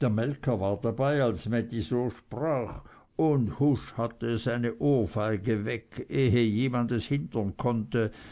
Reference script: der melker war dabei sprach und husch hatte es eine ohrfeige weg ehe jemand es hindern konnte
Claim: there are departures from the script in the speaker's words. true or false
true